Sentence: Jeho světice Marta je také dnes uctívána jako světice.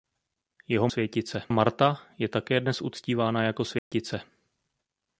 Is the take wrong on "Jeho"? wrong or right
right